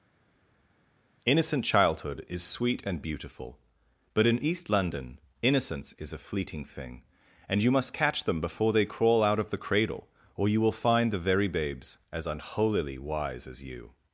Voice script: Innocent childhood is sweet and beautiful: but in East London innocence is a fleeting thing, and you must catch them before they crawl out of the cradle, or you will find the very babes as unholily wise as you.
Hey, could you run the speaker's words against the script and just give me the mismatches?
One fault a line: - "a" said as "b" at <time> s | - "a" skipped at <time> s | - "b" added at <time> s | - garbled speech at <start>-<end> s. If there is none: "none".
none